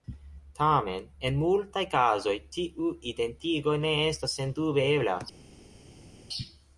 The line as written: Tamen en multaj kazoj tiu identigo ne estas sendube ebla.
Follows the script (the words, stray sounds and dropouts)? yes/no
yes